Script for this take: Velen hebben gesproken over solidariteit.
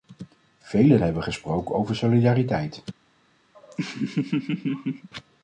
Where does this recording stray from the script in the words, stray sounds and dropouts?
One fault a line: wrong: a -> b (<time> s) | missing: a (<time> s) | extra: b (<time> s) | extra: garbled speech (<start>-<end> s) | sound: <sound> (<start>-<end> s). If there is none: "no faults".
sound: laugh (3.5-5.1 s)